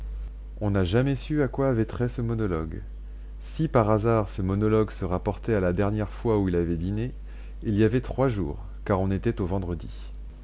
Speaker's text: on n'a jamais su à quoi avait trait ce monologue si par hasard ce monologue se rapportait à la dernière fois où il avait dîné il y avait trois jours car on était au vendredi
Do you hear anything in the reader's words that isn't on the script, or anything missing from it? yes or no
no